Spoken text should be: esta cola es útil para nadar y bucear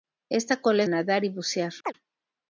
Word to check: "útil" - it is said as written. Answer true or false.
false